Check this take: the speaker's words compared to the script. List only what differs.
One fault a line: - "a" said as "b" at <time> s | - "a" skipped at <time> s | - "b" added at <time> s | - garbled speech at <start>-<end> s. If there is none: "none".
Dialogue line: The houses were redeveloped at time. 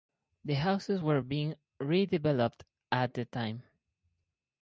- "being" added at 1.2 s
- "the" added at 3.1 s